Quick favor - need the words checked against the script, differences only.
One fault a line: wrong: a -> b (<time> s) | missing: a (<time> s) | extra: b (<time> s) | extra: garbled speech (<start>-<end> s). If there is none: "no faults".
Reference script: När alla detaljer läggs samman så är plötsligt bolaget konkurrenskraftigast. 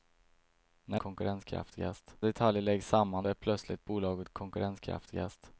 wrong: alla -> konkurrenskraftigast (1.0 s)
missing: så (3.3 s)